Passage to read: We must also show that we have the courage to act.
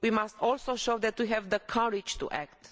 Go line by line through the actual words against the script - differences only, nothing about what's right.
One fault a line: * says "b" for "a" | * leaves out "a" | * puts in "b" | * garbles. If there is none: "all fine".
all fine